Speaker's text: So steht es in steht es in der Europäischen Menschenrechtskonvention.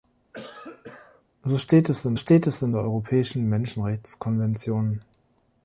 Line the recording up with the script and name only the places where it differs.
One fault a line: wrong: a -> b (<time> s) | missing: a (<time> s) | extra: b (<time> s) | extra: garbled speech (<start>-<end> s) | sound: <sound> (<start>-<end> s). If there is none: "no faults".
sound: cough (0.3-1.2 s)